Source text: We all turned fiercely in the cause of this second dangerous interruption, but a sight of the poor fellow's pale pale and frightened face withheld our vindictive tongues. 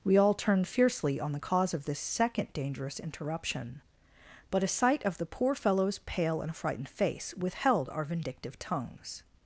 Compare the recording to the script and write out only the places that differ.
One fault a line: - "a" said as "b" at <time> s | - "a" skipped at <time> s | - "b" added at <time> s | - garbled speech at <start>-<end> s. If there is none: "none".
- "in" said as "on" at 1.2 s
- "pale" skipped at 6.4 s